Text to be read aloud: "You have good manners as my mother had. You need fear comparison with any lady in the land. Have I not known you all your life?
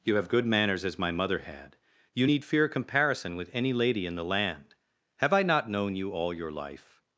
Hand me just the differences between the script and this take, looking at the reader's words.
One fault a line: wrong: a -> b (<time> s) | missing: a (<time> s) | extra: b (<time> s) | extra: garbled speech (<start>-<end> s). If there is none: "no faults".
no faults